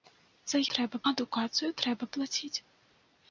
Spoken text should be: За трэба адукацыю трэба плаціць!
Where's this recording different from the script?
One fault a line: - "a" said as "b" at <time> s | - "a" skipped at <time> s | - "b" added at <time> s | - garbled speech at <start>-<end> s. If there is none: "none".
none